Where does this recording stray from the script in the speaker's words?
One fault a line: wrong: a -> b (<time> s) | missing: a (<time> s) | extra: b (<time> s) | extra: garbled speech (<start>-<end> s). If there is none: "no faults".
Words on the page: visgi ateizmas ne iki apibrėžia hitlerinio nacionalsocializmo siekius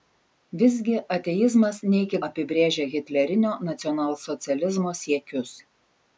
no faults